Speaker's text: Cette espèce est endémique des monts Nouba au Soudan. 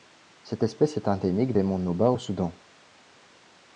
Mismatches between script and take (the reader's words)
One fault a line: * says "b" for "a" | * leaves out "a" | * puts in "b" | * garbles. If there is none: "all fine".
all fine